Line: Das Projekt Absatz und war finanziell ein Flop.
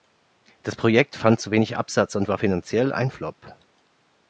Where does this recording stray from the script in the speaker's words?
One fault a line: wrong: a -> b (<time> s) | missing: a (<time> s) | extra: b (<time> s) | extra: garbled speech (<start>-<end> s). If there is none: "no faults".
extra: fand zu wenig (1.1 s)